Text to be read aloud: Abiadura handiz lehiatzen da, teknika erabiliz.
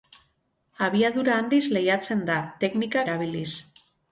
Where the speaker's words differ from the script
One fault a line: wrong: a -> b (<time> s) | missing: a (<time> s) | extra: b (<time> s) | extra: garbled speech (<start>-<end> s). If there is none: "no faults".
no faults